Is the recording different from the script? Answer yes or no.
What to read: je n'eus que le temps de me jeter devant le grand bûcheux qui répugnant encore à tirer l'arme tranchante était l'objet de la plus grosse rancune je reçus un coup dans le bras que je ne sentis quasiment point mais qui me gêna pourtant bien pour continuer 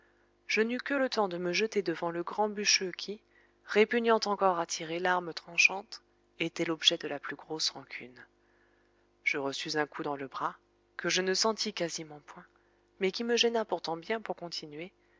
no